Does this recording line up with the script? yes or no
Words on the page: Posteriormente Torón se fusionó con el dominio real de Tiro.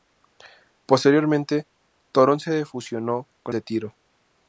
no